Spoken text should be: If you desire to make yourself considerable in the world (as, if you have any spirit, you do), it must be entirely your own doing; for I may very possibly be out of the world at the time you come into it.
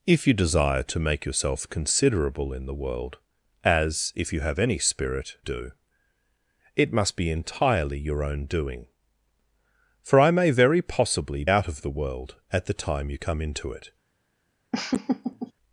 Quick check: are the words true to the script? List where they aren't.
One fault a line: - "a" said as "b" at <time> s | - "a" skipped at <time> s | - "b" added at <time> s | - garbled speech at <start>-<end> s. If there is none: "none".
- "you" skipped at 5.4 s
- "be" skipped at 11.4 s